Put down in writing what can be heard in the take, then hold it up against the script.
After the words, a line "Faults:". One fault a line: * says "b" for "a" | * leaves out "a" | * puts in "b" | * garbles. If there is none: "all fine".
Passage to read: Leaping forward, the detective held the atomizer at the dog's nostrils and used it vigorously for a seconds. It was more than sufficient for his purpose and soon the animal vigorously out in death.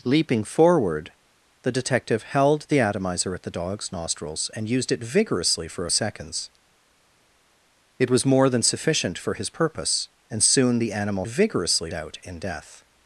Leaping forward, the detective held the atomizer at the dog's nostrils and used it vigorously for a seconds. It was more than sufficient for his purpose and soon the animal vigorously out in death.
Faults:
all fine